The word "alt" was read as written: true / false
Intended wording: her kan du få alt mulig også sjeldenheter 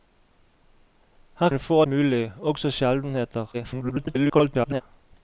false